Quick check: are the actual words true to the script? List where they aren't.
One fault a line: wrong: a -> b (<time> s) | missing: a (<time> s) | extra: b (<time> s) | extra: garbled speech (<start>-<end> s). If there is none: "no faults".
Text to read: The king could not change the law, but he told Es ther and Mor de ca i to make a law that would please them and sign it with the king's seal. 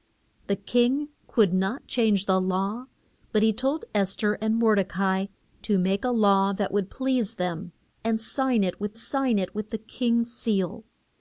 extra: sign it with (9.0 s)